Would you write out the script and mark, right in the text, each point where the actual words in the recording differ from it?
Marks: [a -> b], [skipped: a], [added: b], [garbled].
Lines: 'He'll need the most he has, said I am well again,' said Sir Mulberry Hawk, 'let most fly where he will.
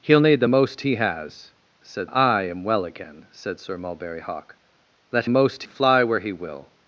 'He'll need the most he has, said I am well again,' said Sir Mulberry Hawk, 'let most fly where he will.